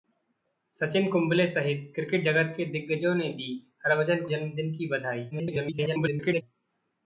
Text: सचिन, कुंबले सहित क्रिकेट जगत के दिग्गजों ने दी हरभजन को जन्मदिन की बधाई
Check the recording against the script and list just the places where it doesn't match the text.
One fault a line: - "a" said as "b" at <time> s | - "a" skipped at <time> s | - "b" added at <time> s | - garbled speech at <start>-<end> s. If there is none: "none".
- "को" skipped at 4.2 s
- garbled speech at 5.3-6.4 s